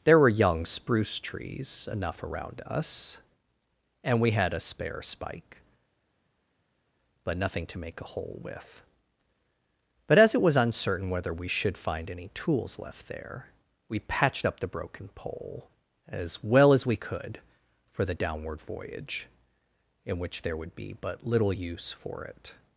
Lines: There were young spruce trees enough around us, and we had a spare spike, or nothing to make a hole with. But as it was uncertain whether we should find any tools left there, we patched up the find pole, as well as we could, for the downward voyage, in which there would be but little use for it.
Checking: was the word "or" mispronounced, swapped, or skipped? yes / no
yes